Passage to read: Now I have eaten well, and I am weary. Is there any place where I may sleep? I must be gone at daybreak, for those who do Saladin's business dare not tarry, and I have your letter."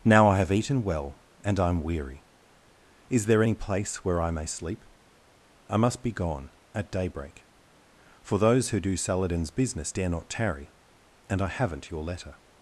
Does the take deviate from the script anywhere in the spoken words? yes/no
yes